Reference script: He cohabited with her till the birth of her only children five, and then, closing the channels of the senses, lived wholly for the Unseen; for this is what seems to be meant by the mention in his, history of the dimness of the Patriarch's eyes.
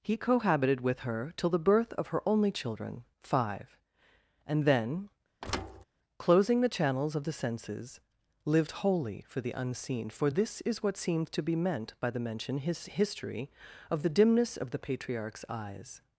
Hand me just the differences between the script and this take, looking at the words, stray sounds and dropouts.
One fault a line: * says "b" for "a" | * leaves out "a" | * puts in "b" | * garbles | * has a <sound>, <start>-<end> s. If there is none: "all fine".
* has a thud, 5.4-5.8 s
* leaves out "in"